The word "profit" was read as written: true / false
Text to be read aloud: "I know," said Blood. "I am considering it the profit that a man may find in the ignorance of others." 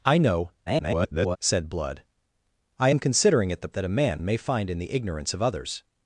false